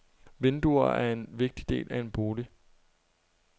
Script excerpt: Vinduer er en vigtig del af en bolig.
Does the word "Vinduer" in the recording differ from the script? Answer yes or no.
no